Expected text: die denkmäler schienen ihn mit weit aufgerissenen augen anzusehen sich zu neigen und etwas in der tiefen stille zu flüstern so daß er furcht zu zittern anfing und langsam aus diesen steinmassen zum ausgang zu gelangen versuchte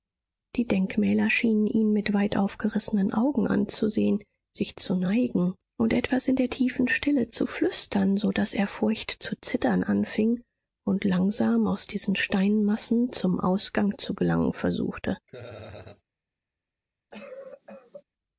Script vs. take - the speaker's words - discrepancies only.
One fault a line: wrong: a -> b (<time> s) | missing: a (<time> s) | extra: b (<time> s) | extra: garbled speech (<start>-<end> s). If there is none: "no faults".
no faults